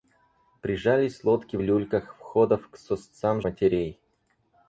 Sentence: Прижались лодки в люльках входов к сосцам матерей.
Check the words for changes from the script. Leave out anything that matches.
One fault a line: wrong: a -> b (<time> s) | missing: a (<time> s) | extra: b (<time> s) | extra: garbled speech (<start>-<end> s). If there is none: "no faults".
no faults